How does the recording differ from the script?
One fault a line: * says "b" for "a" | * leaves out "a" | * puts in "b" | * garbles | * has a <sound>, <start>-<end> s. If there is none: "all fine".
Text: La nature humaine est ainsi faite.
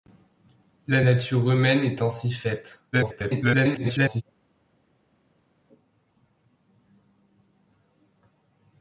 * garbles